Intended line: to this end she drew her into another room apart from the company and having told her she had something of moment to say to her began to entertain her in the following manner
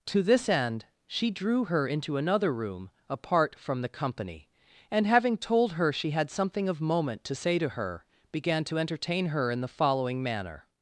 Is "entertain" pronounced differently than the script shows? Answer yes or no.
no